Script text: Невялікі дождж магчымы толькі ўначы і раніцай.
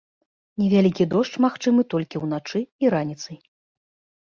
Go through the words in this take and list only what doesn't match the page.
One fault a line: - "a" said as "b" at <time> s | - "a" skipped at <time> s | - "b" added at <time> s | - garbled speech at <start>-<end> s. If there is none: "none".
none